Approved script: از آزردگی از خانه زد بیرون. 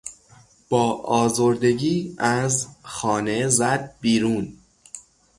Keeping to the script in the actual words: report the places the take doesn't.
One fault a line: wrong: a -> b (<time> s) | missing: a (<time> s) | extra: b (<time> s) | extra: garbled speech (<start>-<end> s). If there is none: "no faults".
wrong: از -> با (0.7 s)